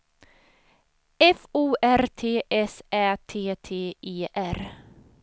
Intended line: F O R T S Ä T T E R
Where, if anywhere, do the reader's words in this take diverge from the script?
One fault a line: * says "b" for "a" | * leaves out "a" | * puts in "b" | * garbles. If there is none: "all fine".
all fine